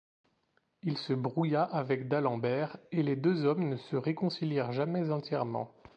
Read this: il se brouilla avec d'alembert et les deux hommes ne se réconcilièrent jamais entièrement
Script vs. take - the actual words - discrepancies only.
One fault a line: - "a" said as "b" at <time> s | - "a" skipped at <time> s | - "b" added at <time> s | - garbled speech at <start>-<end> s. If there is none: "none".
none